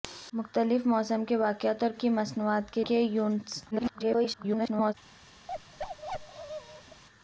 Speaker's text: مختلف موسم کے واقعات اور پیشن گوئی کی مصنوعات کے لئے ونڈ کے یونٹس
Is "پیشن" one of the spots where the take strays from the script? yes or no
yes